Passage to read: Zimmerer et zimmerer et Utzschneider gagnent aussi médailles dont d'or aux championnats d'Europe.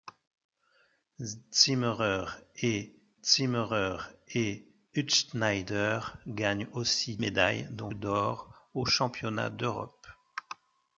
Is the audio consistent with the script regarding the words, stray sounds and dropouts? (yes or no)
yes